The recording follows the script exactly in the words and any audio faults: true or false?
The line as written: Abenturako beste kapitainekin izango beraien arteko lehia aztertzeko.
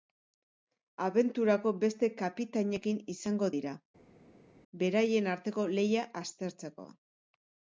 false